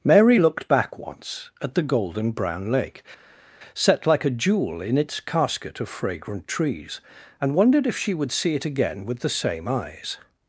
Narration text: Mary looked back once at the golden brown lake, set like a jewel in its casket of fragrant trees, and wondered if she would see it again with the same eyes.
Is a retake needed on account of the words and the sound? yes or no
no